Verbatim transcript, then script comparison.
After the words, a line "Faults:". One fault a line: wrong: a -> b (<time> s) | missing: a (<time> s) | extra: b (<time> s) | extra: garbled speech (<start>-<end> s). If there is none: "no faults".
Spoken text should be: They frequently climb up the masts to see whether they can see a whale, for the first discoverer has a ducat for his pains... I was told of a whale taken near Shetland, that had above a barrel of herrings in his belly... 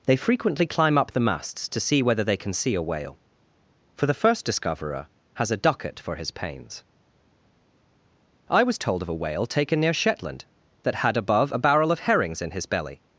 They frequently climb up the masts to see whether they can see a whale, for the first discoverer has a ducat for his pains... I was told of a whale taken near Shetland, that had above a barrel of herrings in his belly...
Faults:
no faults